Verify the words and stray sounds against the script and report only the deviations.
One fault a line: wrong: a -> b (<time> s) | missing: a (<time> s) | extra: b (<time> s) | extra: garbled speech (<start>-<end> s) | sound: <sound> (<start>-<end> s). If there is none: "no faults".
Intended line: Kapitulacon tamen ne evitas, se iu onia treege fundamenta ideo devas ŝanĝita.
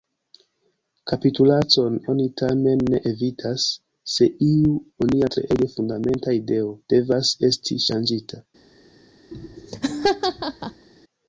extra: oni (2.1 s)
extra: esti (7.5 s)
sound: laugh (9.3-10.9 s)